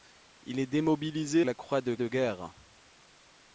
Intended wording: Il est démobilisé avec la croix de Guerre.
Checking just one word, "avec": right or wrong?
wrong